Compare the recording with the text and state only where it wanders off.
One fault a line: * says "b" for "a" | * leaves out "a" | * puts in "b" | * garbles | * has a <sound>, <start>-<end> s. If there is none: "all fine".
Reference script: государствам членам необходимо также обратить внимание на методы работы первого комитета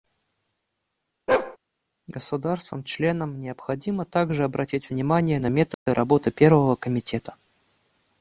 * has a bark, 1.3-1.6 s
* has a dropout, 5.7-5.9 s